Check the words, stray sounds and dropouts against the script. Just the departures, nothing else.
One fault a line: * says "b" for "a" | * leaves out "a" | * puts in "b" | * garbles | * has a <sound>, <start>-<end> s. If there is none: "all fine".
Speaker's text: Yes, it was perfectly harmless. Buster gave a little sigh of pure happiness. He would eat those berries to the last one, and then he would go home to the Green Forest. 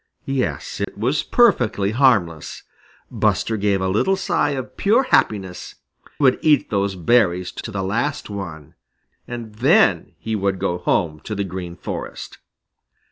* has a dropout, 0.8-0.9 s
* leaves out "He"
* puts in "to"